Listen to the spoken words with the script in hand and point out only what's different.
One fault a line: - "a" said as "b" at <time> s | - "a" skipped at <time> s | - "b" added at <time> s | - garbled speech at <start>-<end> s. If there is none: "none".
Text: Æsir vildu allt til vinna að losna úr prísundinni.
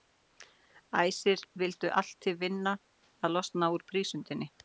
none